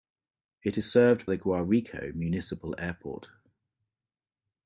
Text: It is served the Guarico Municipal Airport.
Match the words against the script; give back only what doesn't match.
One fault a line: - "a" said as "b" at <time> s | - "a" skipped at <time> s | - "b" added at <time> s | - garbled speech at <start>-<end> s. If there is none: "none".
none